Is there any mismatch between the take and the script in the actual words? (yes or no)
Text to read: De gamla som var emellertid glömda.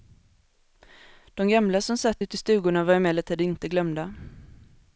yes